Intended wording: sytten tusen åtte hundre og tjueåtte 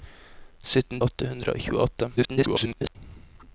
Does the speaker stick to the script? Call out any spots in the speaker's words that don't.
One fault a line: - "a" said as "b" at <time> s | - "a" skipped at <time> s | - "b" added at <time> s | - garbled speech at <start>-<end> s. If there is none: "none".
- "tusen" skipped at 1.0 s
- garbled speech at 2.2-3.0 s